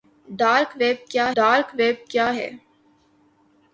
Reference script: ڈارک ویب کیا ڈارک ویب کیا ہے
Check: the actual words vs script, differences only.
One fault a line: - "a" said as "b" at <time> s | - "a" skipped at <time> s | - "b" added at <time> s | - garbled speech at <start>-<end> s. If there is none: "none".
none